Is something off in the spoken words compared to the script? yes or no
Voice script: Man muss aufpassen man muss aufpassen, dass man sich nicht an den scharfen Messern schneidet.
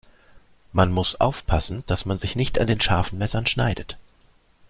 yes